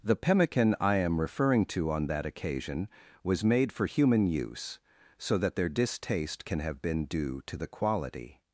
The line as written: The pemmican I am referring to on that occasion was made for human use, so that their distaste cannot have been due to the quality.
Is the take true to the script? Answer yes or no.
no